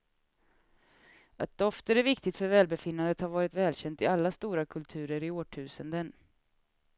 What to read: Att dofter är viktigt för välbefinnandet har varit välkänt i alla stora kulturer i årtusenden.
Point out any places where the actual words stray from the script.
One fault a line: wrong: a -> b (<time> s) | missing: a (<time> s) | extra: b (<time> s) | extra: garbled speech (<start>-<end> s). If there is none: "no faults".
no faults